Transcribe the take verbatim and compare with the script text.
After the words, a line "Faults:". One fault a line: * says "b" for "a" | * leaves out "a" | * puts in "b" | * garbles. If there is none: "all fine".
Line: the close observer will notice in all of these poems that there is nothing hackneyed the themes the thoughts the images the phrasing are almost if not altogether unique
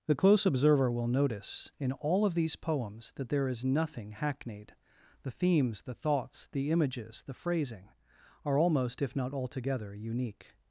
the close observer will notice in all of these poems that there is nothing hackneyed the themes the thoughts the images the phrasing are almost if not altogether unique
Faults:
all fine